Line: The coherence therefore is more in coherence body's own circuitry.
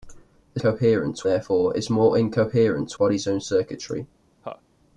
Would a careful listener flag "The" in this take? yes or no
no